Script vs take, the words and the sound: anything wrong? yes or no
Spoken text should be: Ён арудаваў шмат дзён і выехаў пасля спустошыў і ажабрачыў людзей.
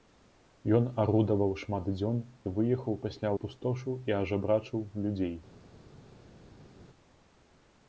no